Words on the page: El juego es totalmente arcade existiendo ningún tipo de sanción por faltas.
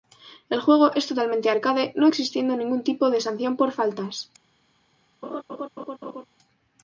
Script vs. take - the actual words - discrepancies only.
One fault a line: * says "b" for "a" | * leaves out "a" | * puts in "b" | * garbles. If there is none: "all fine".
* puts in "no"